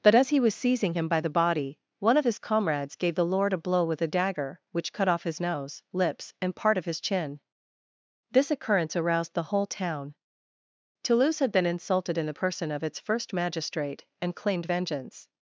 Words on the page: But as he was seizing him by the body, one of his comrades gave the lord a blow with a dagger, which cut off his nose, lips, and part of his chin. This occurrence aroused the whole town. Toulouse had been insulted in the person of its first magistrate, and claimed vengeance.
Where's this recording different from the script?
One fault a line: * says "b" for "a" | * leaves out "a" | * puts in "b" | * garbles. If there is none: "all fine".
all fine